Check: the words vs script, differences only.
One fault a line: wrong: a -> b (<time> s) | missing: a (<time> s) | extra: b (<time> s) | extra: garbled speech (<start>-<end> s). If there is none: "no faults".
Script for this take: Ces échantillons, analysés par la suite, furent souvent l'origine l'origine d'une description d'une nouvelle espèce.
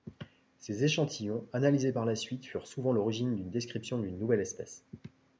missing: l'origine (3.4 s)